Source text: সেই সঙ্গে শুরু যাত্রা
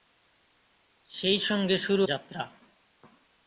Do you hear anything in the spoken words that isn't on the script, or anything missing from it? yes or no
no